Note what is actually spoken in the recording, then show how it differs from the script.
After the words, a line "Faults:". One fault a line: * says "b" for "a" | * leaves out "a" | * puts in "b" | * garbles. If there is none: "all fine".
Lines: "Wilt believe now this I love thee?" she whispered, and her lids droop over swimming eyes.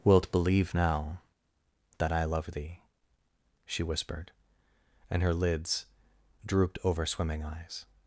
"Wilt believe now that I love thee?" she whispered, and her lids drooped over swimming eyes.
Faults:
* says "that" for "this"
* says "drooped" for "droop"